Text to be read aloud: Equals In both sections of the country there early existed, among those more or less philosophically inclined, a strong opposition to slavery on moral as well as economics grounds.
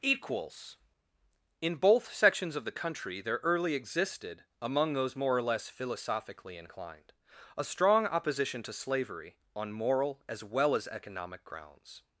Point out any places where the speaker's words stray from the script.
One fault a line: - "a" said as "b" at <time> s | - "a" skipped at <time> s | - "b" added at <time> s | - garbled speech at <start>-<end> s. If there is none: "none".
- "economics" said as "economic" at 10.9 s